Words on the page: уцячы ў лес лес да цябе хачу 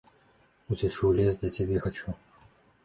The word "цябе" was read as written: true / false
true